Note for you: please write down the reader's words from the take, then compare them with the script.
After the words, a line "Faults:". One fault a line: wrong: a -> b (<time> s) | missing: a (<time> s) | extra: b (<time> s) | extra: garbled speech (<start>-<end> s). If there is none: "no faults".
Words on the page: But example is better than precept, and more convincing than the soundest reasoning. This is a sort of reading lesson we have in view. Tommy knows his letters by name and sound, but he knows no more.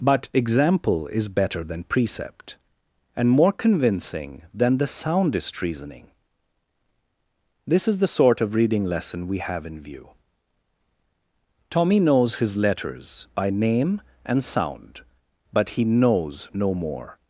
But example is better than precept, and more convincing than the soundest reasoning. This is the sort of reading lesson we have in view. Tommy knows his letters by name and sound, but he knows no more.
Faults:
wrong: a -> the (8.0 s)